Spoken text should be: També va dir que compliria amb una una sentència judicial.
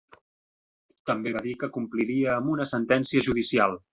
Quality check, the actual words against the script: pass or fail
fail